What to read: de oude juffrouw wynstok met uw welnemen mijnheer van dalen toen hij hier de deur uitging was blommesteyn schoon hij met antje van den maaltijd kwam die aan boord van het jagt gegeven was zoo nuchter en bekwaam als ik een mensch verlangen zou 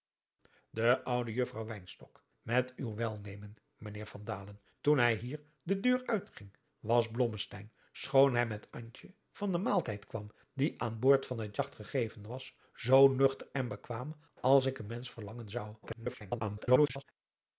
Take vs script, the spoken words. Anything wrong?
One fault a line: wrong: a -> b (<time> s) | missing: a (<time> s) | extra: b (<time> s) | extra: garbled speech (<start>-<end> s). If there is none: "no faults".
extra: garbled speech (15.8-17.0 s)